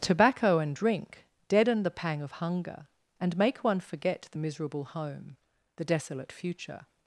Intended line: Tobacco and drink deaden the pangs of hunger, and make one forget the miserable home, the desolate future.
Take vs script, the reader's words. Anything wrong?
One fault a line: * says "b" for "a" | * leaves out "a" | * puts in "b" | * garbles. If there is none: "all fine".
* says "pang" for "pangs"